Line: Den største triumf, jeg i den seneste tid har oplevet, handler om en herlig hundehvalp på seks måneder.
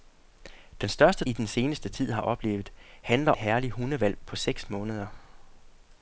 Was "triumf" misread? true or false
true